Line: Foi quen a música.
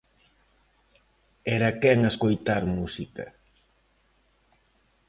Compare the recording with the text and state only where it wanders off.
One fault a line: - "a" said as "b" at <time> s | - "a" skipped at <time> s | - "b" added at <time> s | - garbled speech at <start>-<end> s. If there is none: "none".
- "Foi" said as "Era" at 1.6 s
- "escoitar" added at 2.1 s